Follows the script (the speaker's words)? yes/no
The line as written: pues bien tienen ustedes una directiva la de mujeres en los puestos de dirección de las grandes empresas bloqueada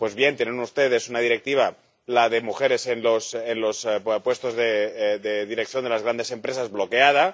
yes